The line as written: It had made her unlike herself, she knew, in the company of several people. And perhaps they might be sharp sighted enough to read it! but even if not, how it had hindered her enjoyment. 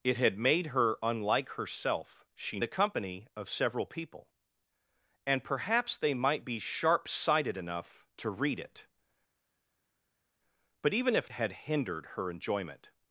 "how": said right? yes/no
no